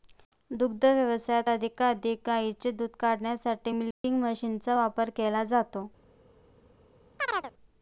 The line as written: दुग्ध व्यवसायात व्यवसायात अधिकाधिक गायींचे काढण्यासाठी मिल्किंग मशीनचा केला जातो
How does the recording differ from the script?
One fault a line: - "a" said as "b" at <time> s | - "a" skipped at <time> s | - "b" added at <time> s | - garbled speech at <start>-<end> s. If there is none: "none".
- "व्यवसायात" skipped at 1.5 s
- "दूध" added at 2.7 s
- "वापर" added at 4.7 s